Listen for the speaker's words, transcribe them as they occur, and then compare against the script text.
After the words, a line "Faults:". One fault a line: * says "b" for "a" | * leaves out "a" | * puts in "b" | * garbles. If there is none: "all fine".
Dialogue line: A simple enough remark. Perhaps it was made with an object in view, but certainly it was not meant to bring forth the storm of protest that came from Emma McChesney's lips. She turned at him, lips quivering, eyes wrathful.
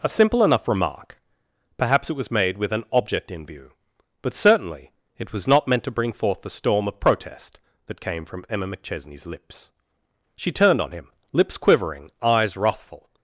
A simple enough remark. Perhaps it was made with an object in view, but certainly it was not meant to bring forth the storm of protest that came from Emma McChesney's lips. She turned on him, lips quivering, eyes wrathful.
Faults:
* says "on" for "at"